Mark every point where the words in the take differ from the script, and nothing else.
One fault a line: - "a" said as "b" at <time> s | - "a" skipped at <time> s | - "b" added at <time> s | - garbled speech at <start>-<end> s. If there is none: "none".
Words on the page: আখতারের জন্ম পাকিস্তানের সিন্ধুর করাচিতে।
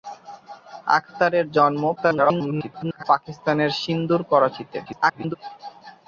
- garbled speech at 2.0-3.0 s
- garbled speech at 4.9-5.4 s